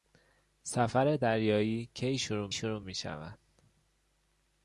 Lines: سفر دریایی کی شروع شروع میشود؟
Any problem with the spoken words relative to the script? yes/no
no